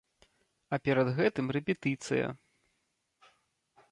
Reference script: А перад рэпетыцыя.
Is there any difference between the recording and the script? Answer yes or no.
yes